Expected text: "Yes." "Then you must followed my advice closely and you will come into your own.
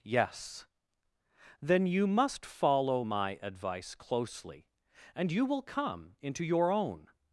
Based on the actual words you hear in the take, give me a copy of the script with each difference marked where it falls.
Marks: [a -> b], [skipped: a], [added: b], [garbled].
"Yes." "Then you must [followed -> follow] my advice closely and you will come into your own.